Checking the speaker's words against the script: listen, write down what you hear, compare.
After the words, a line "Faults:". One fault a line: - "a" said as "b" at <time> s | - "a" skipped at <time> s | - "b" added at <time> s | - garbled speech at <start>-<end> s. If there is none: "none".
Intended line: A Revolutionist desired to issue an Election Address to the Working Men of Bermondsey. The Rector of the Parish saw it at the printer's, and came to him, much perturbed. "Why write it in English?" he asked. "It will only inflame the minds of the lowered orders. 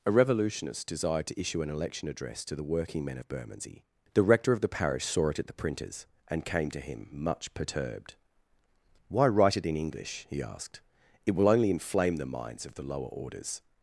A Revolutionist desired to issue an Election Address to the Working Men of Bermondsey. The Rector of the Parish saw it at the printer's, and came to him, much perturbed. "Why write it in English?" he asked. "It will only inflame the minds of the lower orders.
Faults:
- "lowered" said as "lower" at 12.8 s